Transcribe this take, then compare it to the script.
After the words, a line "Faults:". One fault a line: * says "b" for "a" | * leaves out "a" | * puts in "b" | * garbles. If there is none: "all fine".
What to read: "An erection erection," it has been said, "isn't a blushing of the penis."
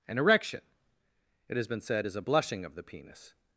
"An erection," it has been said, "is a blushing of the penis."
Faults:
* leaves out "erection"
* says "is" for "isn't"